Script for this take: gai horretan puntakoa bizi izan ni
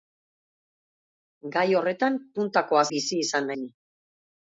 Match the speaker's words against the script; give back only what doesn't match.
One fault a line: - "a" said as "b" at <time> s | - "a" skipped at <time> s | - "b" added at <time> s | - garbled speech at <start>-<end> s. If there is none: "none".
none